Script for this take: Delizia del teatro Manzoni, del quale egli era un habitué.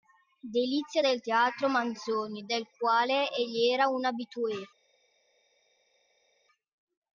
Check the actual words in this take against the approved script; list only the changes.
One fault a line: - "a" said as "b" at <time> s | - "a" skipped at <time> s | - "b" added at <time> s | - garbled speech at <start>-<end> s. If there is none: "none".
none